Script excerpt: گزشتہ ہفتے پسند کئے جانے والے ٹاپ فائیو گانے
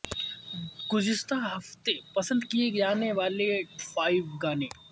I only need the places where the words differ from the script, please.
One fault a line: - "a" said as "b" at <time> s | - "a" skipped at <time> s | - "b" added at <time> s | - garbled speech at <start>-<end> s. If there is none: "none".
- "ٹاپ" skipped at 3.5 s